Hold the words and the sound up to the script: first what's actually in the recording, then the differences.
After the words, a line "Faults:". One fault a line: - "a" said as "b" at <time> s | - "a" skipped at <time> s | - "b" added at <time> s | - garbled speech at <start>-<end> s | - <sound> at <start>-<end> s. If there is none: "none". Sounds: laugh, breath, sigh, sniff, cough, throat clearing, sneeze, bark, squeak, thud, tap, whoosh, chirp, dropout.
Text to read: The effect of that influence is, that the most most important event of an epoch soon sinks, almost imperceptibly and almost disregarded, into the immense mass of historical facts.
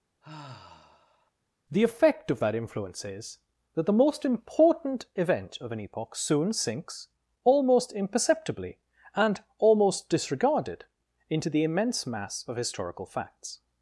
The effect of that influence is, that the most important event of an epoch soon sinks, almost imperceptibly and almost disregarded, into the immense mass of historical facts.
Faults:
- sigh at 0.2-1.3 s
- "most" skipped at 4.2 s